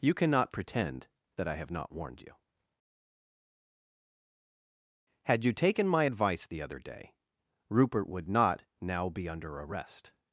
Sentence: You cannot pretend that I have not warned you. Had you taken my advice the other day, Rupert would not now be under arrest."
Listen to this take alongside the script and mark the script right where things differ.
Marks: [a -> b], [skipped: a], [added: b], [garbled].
You cannot pretend that I have not warned you. Had you taken my advice the other day, Rupert would not now be under arrest."